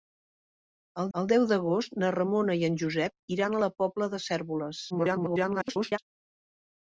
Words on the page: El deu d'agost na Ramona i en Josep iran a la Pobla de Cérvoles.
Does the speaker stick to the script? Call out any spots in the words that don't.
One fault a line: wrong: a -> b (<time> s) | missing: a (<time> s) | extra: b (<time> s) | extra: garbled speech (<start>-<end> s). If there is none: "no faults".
extra: el (1.2 s)
extra: garbled speech (4.9-6.0 s)